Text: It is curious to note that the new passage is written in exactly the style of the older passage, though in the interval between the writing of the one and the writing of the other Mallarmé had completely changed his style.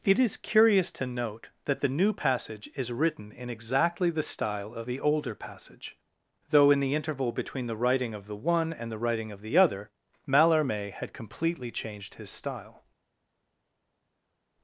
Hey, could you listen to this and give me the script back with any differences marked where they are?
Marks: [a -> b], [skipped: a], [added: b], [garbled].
It is curious to note that the new passage is written in exactly the style of the older passage, though in the interval between the writing of the one and the writing of the other Mallarmé had completely changed his style.